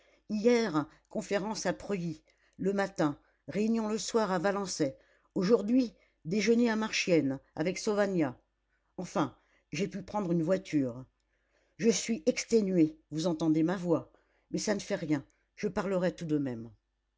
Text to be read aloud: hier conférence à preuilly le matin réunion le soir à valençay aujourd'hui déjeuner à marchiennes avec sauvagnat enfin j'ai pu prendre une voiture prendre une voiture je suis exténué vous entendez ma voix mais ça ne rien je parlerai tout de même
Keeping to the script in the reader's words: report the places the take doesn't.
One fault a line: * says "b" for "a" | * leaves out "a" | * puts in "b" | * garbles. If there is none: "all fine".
* leaves out "prendre une voiture"
* puts in "fait"